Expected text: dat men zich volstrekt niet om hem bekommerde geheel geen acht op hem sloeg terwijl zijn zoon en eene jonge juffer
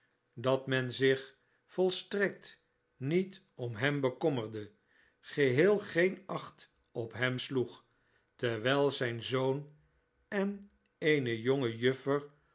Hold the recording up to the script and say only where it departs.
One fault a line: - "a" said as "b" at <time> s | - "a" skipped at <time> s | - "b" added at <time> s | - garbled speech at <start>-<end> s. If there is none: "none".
none